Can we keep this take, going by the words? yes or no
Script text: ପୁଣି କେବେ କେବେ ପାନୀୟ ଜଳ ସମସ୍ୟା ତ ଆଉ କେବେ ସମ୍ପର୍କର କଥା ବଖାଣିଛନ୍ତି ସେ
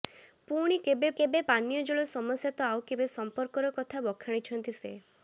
yes